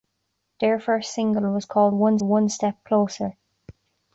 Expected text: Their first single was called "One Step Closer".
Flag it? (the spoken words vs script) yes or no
yes